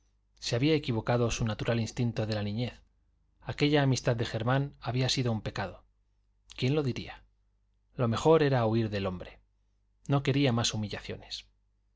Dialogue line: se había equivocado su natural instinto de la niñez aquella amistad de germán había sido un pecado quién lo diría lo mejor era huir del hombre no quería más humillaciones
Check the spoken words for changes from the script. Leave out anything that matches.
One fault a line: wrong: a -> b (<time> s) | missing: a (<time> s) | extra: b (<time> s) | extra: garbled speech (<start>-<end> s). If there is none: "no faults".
no faults